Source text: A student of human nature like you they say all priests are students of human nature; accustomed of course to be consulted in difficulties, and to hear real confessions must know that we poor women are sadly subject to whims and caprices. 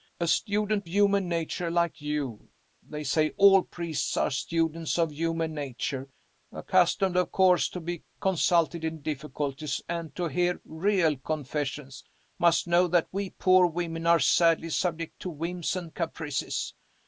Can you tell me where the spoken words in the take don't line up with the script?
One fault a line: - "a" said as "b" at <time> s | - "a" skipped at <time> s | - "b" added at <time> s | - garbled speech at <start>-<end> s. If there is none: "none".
- "of" skipped at 0.9 s